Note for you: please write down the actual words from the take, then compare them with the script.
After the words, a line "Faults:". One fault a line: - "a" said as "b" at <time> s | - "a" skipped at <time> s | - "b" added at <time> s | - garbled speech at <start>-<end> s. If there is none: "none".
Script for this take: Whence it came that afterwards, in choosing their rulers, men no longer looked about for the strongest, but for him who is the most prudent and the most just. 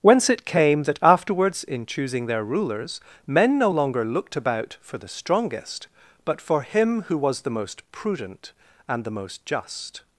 Whence it came that afterwards, in choosing their rulers, men no longer looked about for the strongest, but for him who was the most prudent and the most just.
Faults:
- "is" said as "was" at 7.2 s